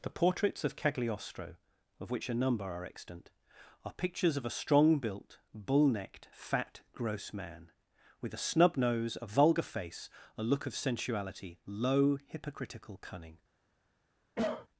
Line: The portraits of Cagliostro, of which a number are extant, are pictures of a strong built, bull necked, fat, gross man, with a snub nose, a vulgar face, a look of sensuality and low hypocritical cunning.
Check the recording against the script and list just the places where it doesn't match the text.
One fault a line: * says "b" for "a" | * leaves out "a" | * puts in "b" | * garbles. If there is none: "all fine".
* leaves out "and"